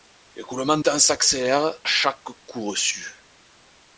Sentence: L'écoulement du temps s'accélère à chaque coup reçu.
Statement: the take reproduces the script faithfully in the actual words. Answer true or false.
false